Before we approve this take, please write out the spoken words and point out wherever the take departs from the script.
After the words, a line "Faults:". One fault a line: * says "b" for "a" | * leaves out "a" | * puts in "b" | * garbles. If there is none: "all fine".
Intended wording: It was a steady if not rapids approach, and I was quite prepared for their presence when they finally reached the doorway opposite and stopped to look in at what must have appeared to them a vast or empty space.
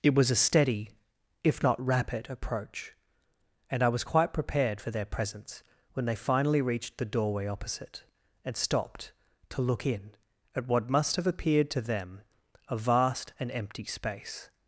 It was a steady if not rapid approach, and I was quite prepared for their presence when they finally reached the doorway opposite and stopped to look in at what must have appeared to them a vast and empty space.
Faults:
* says "rapid" for "rapids"
* says "and" for "or"